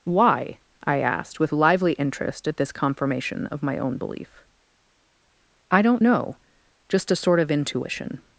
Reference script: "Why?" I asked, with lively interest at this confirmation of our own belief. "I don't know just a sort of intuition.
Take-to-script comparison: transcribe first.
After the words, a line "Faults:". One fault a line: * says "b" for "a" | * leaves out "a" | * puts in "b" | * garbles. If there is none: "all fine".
"Why?" I asked, with lively interest at this confirmation of my own belief. "I don't know just a sort of intuition.
Faults:
* says "my" for "our"